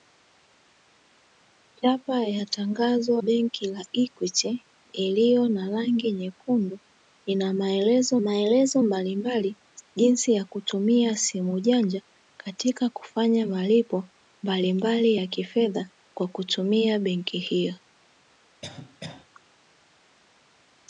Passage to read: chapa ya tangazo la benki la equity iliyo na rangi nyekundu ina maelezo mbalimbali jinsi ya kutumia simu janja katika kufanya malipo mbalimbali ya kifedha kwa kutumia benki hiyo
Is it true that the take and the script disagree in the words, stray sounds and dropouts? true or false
true